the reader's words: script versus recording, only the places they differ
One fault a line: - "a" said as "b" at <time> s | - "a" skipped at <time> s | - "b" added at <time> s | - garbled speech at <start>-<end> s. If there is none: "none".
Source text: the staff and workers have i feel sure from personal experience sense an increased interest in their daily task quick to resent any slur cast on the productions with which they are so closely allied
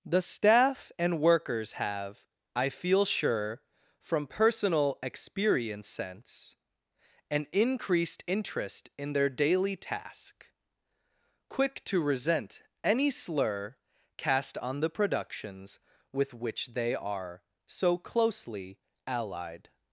none